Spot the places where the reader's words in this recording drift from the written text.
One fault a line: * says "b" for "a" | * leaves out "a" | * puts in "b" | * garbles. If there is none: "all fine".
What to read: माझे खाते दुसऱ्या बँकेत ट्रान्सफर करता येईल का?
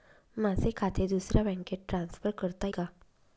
* leaves out "येईल"